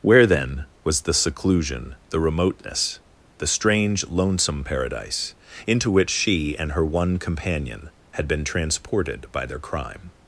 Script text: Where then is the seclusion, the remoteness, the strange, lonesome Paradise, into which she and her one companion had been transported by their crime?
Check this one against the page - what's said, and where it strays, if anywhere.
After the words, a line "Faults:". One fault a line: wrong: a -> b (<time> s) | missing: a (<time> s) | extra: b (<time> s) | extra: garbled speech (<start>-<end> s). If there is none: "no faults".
Where then was the seclusion, the remoteness, the strange, lonesome Paradise, into which she and her one companion had been transported by their crime?
Faults:
wrong: is -> was (0.8 s)